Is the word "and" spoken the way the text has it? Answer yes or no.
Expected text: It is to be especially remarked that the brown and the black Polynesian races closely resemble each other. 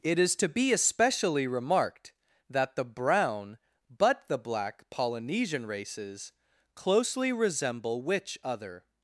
no